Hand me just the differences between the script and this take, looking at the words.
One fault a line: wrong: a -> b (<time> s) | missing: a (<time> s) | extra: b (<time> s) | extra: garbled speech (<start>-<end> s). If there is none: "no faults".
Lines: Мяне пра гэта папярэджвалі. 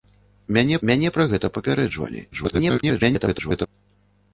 extra: мяне (0.9 s)
extra: garbled speech (2.3-3.7 s)